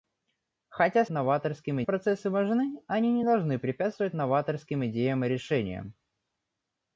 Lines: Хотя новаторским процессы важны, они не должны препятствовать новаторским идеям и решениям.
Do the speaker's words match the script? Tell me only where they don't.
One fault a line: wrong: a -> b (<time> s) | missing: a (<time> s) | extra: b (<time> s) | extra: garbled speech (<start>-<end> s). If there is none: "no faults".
no faults